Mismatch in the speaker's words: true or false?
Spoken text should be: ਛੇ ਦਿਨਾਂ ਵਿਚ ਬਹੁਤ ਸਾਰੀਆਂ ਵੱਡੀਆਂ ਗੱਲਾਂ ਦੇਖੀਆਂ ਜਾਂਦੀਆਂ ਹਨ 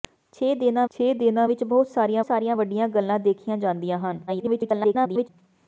true